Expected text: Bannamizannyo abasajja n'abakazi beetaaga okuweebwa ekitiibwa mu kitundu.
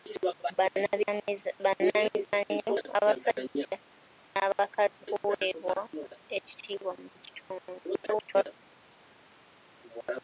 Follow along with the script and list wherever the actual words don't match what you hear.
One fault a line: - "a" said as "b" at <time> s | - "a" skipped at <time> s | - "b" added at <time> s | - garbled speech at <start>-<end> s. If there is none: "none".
- "beetaaga" skipped at 5.0 s
- garbled speech at 8.0-8.4 s